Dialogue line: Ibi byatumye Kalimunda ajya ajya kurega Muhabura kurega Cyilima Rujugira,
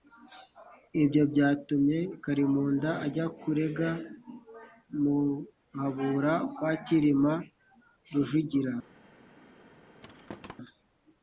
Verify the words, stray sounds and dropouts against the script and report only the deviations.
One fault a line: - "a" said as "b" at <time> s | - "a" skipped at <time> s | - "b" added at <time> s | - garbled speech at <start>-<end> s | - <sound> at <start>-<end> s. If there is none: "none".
- "Ibi" said as "Ibyo" at 1.0 s
- "ajya" skipped at 3.3 s
- "kurega" said as "kwa" at 6.5 s
- thud at 10.0-10.6 s